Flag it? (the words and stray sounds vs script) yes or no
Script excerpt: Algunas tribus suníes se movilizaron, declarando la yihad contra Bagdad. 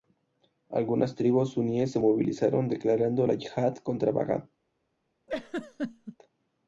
yes